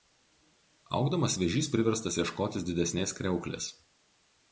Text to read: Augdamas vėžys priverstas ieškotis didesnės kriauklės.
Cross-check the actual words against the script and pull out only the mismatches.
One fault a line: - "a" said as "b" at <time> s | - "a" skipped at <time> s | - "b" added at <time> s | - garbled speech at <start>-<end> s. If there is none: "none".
none